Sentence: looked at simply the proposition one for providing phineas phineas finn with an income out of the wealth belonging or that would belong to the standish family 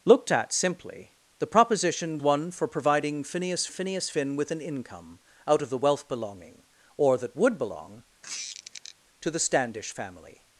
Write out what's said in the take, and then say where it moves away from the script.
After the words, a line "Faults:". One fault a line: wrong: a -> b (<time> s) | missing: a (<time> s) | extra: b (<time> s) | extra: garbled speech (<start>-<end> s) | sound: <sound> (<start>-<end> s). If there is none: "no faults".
looked at simply the proposition one for providing phineas phineas finn with an income out of the wealth belonging or that would belong to the standish family
Faults:
sound: squeak (8.2-9.0 s)